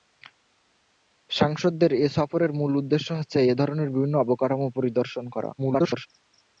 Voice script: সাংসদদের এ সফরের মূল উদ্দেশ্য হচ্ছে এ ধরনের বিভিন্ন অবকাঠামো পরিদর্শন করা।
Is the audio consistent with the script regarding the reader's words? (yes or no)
no